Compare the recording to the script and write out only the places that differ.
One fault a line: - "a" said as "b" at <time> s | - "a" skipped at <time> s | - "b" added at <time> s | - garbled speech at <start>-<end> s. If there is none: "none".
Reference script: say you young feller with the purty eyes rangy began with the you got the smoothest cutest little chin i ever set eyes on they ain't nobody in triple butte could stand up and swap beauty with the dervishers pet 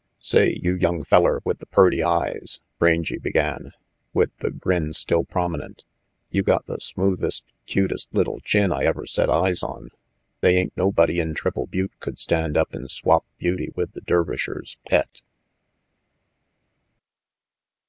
- "grin still prominent" added at 4.5 s